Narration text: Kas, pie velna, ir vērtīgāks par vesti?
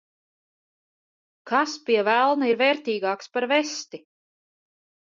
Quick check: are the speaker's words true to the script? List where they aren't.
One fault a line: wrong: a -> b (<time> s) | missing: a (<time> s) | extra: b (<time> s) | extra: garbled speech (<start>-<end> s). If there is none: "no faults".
no faults